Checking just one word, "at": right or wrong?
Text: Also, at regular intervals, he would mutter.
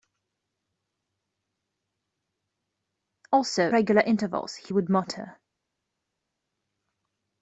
wrong